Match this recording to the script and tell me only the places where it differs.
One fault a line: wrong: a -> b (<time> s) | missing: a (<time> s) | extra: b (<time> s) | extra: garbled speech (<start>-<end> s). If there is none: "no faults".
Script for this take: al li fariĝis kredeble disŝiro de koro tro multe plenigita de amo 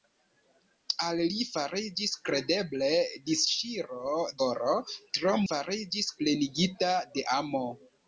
missing: de (4.2 s)
wrong: multe -> fariĝis (5.4 s)